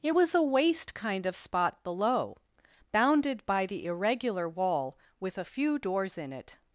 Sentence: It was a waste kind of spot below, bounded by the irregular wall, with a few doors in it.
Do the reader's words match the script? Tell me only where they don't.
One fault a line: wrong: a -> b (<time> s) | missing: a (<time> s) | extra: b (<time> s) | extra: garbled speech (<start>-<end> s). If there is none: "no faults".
no faults